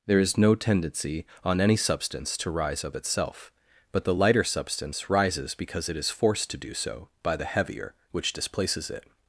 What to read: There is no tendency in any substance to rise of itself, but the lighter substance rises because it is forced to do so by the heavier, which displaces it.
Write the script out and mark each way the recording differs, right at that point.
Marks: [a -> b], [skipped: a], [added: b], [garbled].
There is no tendency [in -> on] any substance to rise of itself, but the lighter substance rises because it is forced to do so by the heavier, which displaces it.